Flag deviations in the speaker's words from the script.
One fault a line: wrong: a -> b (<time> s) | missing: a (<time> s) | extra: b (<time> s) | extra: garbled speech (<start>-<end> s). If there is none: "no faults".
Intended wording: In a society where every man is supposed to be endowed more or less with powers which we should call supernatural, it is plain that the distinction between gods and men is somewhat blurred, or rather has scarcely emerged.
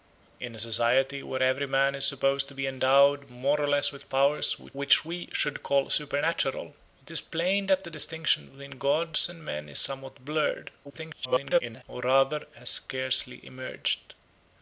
extra: garbled speech (10.8-11.8 s)